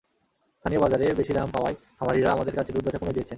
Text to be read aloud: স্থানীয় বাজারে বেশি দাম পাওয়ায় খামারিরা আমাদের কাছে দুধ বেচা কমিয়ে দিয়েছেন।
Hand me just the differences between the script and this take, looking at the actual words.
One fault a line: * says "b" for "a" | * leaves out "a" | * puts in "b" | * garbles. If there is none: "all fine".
all fine